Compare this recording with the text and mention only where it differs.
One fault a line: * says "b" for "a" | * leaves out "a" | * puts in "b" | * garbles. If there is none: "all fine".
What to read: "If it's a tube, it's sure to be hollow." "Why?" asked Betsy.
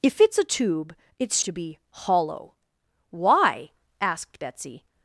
* leaves out "sure"